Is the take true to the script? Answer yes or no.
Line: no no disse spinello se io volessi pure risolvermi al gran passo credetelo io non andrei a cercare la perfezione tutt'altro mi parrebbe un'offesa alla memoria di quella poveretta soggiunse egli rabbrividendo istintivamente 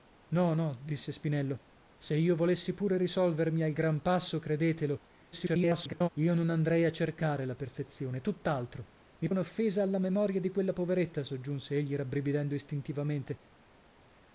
no